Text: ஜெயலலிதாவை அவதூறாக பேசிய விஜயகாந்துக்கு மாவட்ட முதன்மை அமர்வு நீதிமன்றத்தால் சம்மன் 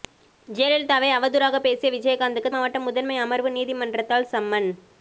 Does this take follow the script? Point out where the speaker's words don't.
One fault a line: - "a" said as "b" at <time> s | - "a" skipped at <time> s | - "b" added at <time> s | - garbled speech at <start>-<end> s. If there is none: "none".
none